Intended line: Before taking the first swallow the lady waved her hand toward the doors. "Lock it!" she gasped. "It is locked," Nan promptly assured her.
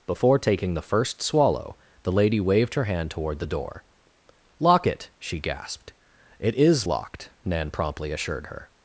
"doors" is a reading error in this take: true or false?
true